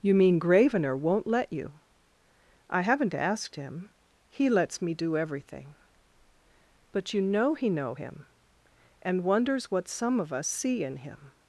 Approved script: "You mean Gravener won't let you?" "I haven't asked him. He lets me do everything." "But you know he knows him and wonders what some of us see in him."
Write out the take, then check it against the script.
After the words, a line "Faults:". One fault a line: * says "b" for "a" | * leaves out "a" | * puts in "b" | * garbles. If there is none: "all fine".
"You mean Gravener won't let you?" "I haven't asked him. He lets me do everything." "But you know he know him and wonders what some of us see in him."
Faults:
* says "know" for "knows"